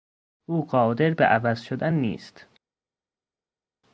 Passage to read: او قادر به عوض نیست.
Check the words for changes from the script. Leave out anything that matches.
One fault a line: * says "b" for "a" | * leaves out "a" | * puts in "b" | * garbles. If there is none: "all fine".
* puts in "شدن"